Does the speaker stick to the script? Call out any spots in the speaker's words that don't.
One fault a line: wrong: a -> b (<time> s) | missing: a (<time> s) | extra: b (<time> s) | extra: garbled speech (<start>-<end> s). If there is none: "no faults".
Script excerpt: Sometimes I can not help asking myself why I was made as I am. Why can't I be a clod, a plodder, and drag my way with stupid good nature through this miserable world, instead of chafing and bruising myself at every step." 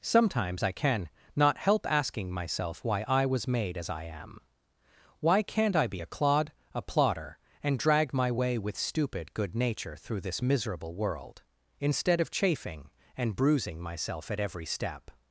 no faults